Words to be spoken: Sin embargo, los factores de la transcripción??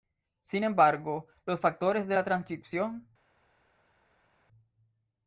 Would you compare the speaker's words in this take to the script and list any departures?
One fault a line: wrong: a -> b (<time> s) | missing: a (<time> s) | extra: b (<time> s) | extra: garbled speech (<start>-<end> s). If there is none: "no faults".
no faults